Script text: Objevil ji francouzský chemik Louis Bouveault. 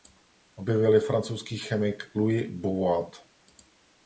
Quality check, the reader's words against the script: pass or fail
pass